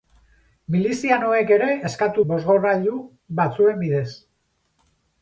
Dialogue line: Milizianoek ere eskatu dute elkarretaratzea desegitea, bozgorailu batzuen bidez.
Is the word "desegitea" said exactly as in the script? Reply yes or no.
no